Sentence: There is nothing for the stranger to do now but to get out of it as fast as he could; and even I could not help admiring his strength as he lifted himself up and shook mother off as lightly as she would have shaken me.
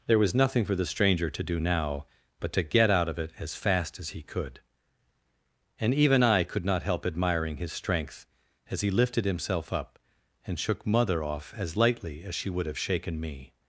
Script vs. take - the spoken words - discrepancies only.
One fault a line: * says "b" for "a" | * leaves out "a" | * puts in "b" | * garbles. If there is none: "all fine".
* says "was" for "is"